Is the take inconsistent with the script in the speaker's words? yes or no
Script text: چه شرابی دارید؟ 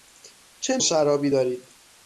no